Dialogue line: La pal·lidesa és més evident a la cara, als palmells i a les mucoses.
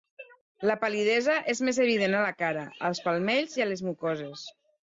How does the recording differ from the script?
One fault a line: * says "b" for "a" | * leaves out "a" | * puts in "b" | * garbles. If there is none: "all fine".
all fine